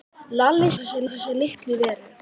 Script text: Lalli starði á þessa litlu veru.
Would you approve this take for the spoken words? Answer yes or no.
no